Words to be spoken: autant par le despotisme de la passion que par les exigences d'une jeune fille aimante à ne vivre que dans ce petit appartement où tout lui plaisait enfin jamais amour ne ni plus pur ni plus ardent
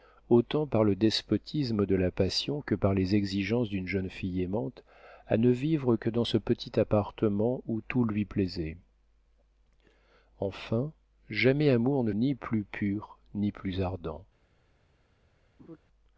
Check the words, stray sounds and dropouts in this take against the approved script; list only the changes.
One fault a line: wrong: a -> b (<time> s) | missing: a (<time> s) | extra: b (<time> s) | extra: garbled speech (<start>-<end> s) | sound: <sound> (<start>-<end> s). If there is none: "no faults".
sound: laugh (15.6-15.8 s)